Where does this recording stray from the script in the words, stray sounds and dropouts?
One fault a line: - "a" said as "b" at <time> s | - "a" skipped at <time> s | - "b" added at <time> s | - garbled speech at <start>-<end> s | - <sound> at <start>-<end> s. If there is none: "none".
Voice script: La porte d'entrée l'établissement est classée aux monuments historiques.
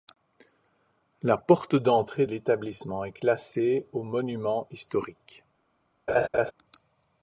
- laugh at 6.1-6.5 s